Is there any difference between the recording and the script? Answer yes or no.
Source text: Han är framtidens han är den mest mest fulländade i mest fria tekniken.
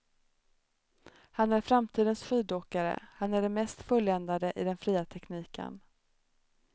yes